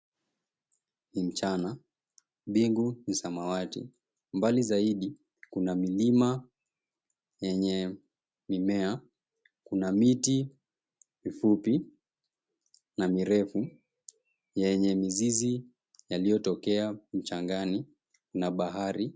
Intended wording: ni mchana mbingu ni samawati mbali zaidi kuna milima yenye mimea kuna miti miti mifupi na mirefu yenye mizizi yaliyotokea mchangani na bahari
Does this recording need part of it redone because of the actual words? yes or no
yes